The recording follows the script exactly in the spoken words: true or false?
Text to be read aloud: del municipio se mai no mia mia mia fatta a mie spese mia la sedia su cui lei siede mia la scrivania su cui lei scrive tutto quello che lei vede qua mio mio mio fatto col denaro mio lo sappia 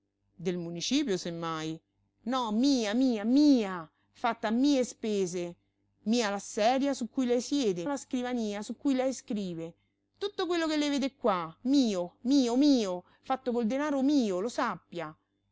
false